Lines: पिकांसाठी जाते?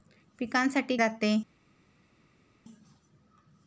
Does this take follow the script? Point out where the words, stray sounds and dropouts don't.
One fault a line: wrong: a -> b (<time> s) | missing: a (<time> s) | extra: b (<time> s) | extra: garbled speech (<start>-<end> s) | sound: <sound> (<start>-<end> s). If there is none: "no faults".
no faults